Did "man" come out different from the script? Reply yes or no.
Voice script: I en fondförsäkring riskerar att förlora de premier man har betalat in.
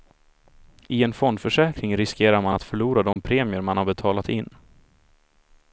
no